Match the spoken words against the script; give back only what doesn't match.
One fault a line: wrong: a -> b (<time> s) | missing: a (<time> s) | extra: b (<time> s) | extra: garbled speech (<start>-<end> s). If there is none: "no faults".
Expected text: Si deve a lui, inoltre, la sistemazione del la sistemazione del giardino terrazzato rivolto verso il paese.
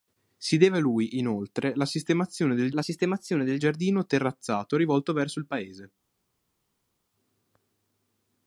no faults